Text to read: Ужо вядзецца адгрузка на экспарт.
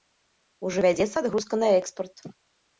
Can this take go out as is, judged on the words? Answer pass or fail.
pass